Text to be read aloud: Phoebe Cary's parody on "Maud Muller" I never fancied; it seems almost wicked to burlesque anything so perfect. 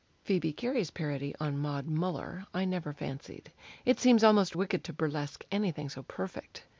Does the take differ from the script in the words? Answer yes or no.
no